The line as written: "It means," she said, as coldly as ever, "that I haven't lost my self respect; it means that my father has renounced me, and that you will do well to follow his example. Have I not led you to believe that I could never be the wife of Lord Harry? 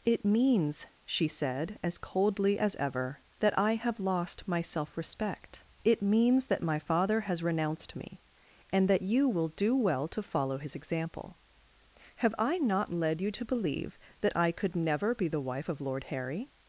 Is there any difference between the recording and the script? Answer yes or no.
yes